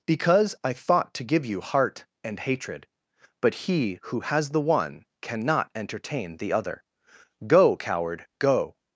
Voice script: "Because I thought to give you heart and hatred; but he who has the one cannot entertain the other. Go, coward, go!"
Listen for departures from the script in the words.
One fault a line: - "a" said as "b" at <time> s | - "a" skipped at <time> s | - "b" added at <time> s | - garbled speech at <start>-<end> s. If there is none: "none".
none